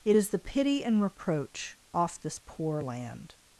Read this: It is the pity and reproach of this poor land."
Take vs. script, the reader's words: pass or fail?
fail